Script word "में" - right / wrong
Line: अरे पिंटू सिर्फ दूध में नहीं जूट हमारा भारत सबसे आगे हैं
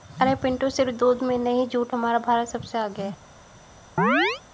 right